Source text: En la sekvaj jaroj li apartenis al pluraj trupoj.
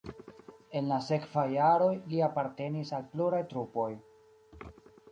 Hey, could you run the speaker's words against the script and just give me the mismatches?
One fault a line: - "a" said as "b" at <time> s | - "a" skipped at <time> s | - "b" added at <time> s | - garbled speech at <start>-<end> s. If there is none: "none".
none